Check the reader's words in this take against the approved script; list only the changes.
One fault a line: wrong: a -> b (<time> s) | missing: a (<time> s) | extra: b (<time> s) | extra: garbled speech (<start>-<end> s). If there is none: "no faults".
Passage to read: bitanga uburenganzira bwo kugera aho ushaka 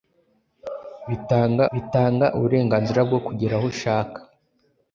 extra: bitanga (1.7 s)